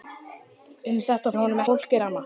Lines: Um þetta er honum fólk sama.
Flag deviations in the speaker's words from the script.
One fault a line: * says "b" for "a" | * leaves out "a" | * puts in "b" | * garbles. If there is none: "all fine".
all fine